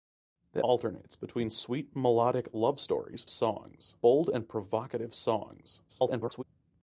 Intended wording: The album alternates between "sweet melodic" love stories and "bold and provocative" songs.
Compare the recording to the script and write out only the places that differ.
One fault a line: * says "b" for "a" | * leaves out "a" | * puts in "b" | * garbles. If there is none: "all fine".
* leaves out "album"
* says "songs" for "and"
* garbles